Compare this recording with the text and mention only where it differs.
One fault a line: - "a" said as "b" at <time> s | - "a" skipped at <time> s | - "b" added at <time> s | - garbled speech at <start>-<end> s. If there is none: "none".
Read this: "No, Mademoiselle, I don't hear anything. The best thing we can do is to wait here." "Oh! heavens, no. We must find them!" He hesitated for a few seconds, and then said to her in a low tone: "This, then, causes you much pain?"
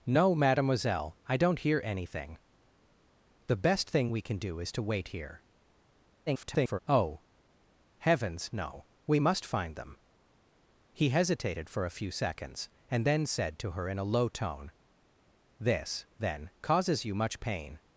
- garbled speech at 6.3-6.8 s